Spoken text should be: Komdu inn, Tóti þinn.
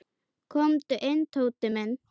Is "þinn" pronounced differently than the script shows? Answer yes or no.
yes